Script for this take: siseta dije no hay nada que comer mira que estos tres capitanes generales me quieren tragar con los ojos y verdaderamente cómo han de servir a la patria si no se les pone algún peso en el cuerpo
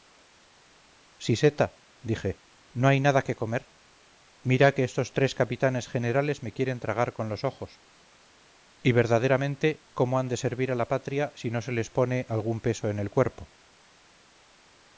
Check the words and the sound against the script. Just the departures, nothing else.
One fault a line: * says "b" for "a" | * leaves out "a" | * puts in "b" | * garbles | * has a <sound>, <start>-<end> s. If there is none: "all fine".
all fine